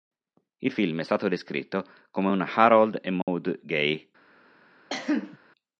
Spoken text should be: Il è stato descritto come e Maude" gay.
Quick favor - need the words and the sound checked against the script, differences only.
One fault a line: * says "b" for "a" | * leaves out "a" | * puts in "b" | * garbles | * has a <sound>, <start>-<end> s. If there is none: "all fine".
* puts in "film"
* puts in "un Harold"
* has a dropout, 3.2-3.3 s
* has a cough, 4.9-5.4 s